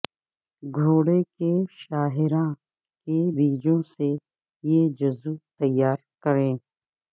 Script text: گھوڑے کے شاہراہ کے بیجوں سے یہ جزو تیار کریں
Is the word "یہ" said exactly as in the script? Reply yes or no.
yes